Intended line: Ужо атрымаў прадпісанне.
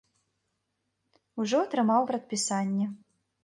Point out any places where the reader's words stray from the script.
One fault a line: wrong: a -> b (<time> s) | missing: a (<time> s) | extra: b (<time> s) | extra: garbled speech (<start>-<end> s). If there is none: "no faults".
no faults